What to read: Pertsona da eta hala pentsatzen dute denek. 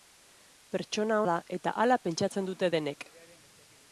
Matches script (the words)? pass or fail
pass